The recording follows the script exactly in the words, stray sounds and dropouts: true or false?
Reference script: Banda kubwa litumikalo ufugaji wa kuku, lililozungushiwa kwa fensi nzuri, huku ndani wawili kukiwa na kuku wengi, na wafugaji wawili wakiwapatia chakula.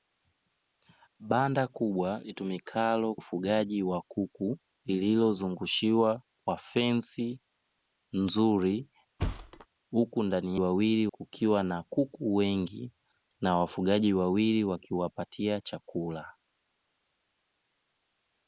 false